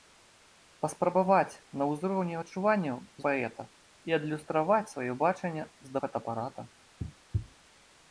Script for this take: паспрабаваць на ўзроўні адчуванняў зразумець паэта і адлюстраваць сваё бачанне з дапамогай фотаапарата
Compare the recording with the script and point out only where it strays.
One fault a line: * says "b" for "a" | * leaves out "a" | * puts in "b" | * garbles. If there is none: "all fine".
* leaves out "зразумець"
* leaves out "дапамогай"